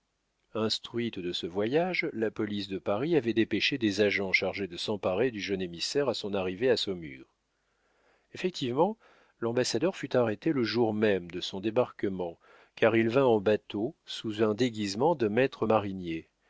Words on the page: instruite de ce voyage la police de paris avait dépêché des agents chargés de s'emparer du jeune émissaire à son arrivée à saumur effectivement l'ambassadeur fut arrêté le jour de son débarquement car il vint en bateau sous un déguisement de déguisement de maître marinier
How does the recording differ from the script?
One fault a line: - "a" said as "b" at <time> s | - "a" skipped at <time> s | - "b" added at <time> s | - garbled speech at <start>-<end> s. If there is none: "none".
- "même" added at 10.9 s
- "déguisement de" skipped at 15.3 s